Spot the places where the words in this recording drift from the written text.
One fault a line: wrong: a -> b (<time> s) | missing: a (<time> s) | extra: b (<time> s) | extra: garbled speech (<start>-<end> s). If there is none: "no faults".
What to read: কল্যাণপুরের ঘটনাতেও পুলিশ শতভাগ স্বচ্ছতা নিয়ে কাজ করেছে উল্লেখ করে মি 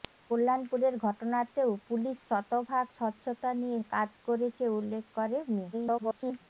extra: garbled speech (5.7-6.4 s)